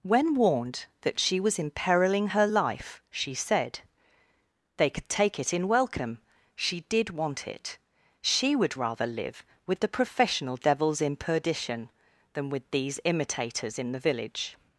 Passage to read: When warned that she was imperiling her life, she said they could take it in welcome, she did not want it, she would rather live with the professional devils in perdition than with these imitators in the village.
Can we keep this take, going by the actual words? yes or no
no